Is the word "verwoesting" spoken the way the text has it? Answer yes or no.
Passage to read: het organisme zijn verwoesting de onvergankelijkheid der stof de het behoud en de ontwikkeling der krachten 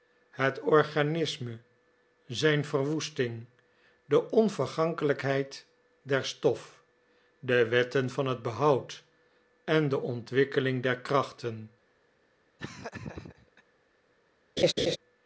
yes